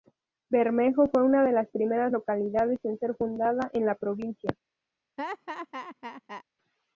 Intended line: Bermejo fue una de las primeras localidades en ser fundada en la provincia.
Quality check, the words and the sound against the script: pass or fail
fail